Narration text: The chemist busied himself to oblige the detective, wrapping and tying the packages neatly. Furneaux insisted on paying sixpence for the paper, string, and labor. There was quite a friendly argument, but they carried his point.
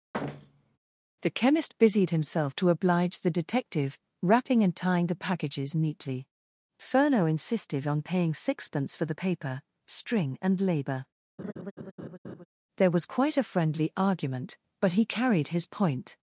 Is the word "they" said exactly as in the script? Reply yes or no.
no